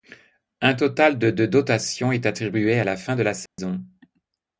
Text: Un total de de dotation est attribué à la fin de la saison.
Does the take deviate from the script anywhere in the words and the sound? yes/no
yes